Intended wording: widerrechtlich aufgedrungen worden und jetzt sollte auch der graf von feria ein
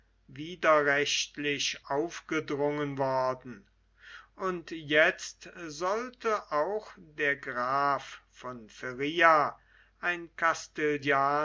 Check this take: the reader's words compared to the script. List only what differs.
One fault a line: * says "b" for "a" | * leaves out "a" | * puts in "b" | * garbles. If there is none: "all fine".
all fine